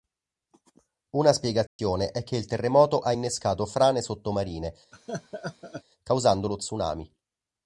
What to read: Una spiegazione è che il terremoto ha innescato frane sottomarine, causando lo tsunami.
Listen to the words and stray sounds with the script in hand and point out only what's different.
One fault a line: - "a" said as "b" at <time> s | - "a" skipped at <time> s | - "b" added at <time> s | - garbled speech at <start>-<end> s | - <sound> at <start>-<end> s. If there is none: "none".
- dropout at 1.7-1.8 s
- laugh at 4.9-5.8 s